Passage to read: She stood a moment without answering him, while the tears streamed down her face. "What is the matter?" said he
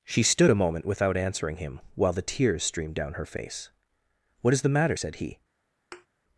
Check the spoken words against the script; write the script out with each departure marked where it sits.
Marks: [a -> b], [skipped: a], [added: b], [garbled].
She stood a moment without answering him, while the tears streamed down her face. "What is the matter?" said he